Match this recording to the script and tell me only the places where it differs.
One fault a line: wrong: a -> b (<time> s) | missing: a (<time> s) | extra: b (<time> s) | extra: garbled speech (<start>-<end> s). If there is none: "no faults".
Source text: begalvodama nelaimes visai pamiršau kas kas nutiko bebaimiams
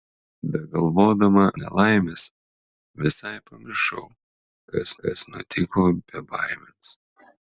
no faults